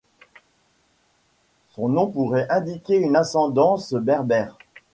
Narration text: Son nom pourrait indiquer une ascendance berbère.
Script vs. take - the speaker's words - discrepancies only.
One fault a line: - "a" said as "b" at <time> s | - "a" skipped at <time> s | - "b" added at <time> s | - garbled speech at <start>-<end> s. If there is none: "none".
none